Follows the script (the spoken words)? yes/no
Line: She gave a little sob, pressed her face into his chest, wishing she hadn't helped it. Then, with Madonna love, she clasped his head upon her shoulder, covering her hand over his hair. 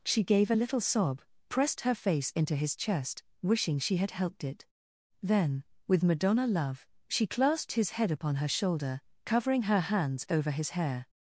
no